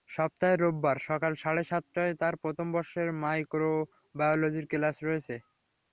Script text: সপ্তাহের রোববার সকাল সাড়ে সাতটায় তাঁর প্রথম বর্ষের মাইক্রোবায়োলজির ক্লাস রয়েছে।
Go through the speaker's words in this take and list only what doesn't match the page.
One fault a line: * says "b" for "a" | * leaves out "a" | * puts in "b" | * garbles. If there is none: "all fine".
all fine